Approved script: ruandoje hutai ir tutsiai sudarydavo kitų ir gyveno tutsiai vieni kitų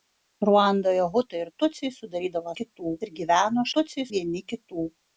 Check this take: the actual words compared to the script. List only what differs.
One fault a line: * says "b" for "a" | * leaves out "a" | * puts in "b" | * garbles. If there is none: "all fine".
all fine